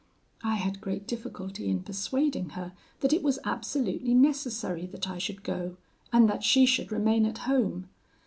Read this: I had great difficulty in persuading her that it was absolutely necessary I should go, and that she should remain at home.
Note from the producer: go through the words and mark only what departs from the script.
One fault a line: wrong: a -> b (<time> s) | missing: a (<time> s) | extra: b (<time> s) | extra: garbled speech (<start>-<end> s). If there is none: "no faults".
extra: that (4.9 s)